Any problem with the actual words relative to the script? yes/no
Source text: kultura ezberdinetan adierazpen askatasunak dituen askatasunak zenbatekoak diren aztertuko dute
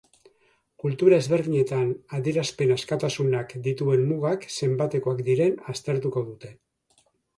yes